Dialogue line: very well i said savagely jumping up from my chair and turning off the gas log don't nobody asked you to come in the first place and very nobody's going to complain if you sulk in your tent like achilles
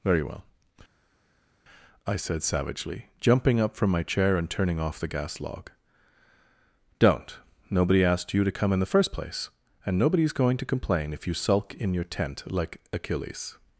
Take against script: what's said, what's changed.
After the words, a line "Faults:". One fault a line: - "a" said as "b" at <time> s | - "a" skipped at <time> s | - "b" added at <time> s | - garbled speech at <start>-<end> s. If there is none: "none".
very well i said savagely jumping up from my chair and turning off the gas log don't nobody asked you to come in the first place and nobody's going to complain if you sulk in your tent like achilles
Faults:
- "very" skipped at 10.0 s